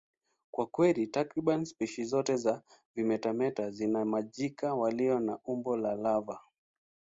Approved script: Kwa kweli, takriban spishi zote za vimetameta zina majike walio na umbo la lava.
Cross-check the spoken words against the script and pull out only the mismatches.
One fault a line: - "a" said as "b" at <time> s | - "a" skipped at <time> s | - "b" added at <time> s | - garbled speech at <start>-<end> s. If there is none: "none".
none